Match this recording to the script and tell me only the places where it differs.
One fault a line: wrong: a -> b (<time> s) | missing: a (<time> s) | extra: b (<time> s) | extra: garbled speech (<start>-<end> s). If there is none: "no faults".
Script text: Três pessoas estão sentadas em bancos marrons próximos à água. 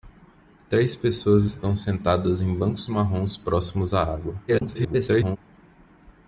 extra: garbled speech (4.5-5.4 s)